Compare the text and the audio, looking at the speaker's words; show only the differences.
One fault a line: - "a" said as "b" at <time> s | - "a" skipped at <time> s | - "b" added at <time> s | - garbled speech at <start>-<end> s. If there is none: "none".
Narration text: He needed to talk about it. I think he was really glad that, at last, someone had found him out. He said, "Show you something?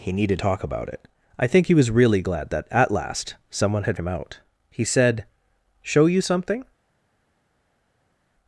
- "to" skipped at 0.4 s
- "found" skipped at 4.0 s